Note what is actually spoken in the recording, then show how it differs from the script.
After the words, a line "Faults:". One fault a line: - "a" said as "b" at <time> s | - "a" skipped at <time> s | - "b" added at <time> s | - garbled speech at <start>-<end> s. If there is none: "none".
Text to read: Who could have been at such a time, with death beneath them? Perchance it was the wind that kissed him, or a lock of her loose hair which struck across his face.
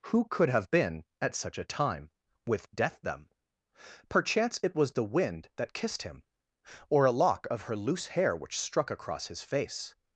Who could have been at such a time, with death them? Perchance it was the wind that kissed him, or a lock of her loose hair which struck across his face.
Faults:
- "beneath" skipped at 3.0 s